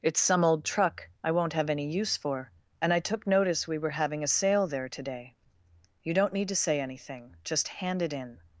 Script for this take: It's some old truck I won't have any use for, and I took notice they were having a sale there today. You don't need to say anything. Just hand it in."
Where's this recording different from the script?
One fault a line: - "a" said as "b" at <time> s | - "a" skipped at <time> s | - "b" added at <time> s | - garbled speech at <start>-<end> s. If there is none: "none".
- "they" said as "we" at 3.7 s